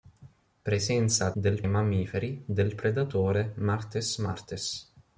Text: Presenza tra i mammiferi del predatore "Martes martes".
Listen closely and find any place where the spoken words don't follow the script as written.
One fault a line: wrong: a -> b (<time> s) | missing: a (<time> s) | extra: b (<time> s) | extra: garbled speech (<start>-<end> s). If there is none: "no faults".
wrong: tra -> del (1.3 s)